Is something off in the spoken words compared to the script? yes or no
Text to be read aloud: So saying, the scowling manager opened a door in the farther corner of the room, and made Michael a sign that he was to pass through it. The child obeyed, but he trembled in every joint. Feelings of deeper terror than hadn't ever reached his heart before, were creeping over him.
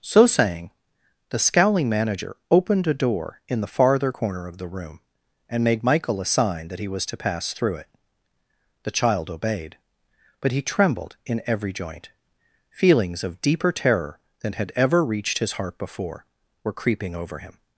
yes